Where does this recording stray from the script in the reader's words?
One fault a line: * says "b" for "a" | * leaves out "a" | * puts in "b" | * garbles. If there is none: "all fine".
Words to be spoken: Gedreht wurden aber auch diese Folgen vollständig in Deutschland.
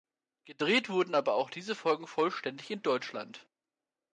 all fine